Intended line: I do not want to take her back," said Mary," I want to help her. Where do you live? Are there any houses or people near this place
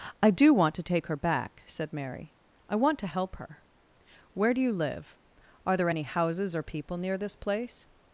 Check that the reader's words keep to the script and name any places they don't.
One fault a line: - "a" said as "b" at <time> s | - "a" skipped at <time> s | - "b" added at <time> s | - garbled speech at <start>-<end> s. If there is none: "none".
- "not" skipped at 0.5 s